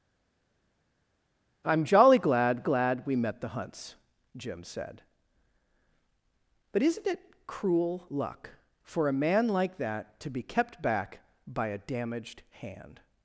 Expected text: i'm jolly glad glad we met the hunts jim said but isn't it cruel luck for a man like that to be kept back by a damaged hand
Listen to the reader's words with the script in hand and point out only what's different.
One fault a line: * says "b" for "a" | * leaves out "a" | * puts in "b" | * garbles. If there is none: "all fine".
all fine